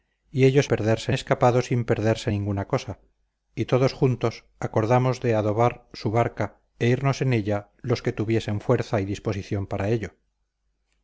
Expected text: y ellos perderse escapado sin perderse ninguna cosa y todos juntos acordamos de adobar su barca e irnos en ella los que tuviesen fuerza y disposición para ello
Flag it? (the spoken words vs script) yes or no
no